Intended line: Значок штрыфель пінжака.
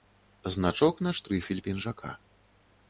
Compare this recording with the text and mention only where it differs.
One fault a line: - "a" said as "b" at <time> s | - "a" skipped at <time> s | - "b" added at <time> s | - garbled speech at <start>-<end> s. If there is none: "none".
- "на" added at 1.0 s